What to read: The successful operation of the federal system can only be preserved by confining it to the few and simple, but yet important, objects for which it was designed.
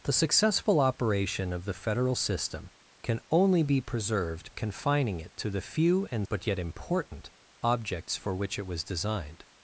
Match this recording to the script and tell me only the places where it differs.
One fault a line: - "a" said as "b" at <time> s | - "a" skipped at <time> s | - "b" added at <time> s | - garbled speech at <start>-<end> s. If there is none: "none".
- "by" skipped at 4.5 s
- "simple" skipped at 6.3 s